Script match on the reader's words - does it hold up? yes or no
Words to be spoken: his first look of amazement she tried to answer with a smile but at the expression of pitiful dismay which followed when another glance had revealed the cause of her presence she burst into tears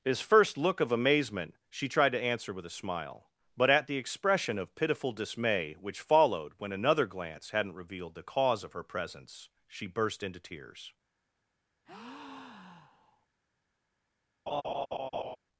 no